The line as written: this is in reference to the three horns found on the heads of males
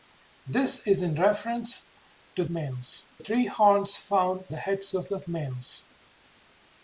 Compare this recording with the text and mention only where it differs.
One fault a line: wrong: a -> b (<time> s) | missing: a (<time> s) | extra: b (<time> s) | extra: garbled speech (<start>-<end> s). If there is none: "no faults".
wrong: the -> males (2.5 s)
missing: on (4.4 s)
extra: of (5.1 s)